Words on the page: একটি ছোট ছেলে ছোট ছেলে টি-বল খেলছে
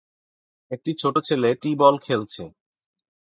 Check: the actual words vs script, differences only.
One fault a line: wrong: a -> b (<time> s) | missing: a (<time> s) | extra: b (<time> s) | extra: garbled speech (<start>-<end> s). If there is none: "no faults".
missing: ছোট ছেলে (1.5 s)